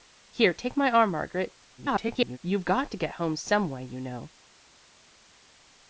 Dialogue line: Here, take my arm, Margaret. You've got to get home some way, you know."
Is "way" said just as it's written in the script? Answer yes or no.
yes